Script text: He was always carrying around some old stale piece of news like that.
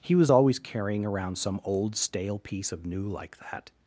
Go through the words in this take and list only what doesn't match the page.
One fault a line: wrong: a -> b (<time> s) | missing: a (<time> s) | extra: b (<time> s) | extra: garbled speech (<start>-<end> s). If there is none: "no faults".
wrong: news -> new (2.8 s)